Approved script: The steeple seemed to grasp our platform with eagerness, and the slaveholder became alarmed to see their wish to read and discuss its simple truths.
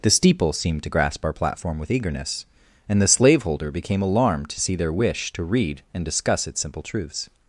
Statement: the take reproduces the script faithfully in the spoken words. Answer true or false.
true